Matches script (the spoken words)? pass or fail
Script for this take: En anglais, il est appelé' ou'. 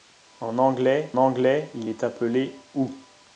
fail